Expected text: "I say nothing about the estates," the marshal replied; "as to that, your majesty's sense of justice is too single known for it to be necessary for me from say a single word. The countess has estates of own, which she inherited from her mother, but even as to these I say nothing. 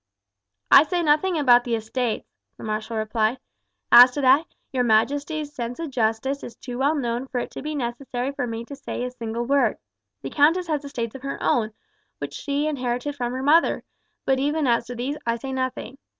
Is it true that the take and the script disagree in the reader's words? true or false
true